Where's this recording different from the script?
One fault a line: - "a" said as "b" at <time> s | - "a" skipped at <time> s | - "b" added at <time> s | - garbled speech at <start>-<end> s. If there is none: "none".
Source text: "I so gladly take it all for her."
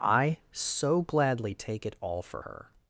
none